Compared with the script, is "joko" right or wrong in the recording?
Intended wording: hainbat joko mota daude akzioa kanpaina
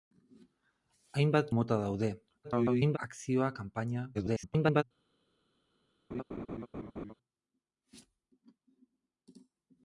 wrong